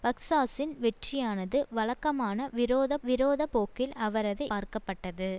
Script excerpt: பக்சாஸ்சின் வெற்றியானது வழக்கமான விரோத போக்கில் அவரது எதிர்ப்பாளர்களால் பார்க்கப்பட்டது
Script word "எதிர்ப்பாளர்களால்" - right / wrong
wrong